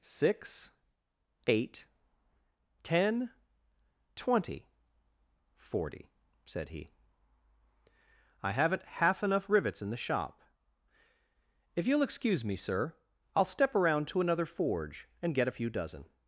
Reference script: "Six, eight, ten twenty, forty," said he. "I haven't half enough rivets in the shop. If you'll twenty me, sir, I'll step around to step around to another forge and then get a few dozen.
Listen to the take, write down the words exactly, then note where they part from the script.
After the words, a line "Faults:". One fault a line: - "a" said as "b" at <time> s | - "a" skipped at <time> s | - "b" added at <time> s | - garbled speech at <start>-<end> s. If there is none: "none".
"Six, eight, ten twenty, forty," said he. "I haven't half enough rivets in the shop. If you'll excuse me, sir, I'll step around to another forge and get a few dozen.
Faults:
- "twenty" said as "excuse" at 12.0 s
- "step around to" skipped at 14.2 s
- "then" skipped at 15.3 s